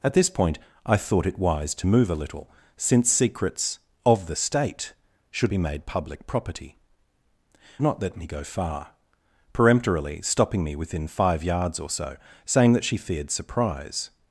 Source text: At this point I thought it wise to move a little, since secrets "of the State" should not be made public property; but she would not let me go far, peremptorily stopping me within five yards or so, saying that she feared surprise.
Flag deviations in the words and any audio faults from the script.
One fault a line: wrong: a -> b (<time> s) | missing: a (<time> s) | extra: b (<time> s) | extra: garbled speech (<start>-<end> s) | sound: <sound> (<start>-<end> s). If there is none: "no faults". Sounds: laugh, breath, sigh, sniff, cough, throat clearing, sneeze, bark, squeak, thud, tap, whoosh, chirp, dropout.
missing: not (5.5 s)
missing: but she would (6.8 s)